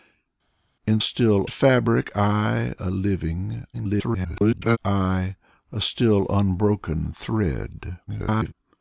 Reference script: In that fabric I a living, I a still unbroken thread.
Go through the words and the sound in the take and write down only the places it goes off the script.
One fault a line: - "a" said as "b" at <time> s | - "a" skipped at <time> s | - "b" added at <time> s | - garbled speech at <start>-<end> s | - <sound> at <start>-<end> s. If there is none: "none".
- "that" said as "still" at 1.0 s
- garbled speech at 3.7-4.8 s
- garbled speech at 8.1-8.5 s